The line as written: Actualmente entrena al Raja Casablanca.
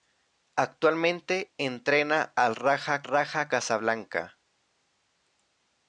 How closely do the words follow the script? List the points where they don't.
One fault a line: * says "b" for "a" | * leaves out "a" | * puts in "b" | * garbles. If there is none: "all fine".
* puts in "Raja"